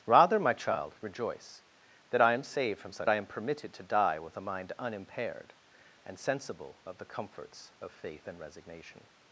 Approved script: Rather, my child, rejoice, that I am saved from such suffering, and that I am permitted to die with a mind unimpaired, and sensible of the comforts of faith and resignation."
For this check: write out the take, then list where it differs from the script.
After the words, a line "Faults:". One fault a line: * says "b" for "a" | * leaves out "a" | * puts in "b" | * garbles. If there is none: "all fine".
Rather, my child, rejoice, that I am saved from such I am permitted to die with a mind unimpaired, and sensible of the comforts of faith and resignation."
Faults:
* leaves out "suffering and that"